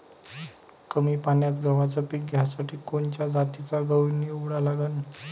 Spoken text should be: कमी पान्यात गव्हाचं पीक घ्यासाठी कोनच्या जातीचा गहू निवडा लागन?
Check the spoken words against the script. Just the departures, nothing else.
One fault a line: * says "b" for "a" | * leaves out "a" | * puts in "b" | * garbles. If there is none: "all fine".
all fine